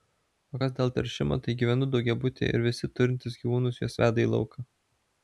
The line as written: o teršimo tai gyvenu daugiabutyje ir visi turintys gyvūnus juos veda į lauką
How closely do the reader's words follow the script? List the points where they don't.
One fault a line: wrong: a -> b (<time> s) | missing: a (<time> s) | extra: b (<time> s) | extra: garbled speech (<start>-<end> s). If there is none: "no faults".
extra: kas dėl (0.6 s)